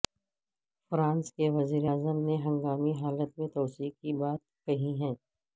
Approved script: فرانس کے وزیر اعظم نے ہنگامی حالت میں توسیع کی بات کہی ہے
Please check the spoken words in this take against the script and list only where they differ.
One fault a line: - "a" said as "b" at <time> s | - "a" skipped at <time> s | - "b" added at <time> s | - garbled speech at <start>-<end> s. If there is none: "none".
none